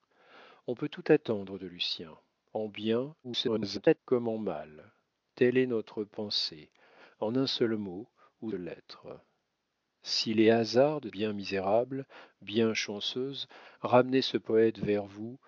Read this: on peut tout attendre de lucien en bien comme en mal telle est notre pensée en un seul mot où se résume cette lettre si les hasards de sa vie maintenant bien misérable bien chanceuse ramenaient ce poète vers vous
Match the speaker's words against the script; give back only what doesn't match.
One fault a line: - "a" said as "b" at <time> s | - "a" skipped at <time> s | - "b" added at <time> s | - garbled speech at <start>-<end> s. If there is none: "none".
- garbled speech at 3.2-4.0 s
- "se résume cette" skipped at 8.5 s
- "sa vie maintenant" skipped at 11.1 s